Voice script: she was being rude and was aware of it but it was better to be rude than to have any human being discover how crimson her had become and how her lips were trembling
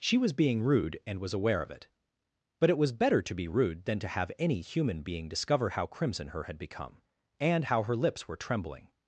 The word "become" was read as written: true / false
true